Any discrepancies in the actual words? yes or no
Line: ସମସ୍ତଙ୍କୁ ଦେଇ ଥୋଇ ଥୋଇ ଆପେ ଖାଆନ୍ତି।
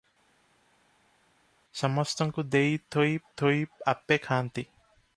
no